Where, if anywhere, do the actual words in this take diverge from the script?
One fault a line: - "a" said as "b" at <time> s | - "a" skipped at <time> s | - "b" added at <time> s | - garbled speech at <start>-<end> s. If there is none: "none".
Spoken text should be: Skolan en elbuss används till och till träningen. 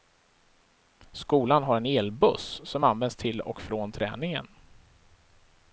- "har" added at 1.6 s
- "som" added at 2.6 s
- "till" said as "från" at 3.6 s